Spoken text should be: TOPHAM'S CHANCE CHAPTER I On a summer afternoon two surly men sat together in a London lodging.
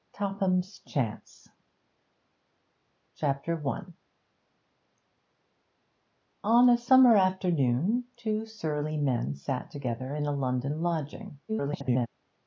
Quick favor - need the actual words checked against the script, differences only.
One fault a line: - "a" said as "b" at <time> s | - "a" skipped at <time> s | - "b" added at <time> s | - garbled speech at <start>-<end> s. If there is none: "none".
- garbled speech at 11.5-12.1 s